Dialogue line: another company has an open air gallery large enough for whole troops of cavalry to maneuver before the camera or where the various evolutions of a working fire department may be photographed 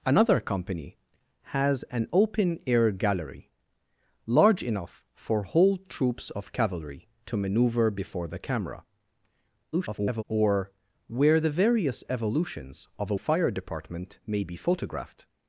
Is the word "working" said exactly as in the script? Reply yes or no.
no